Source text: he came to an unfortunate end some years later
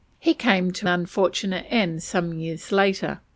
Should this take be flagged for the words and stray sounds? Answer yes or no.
yes